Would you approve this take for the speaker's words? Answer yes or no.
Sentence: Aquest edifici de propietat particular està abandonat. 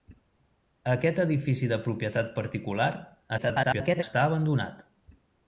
no